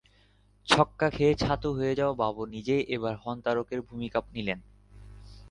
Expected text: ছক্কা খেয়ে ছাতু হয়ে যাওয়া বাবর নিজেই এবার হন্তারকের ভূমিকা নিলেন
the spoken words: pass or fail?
pass